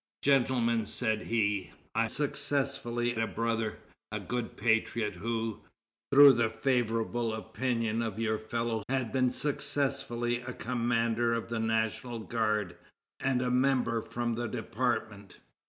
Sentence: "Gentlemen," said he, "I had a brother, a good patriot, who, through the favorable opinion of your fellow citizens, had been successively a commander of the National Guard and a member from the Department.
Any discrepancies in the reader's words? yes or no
yes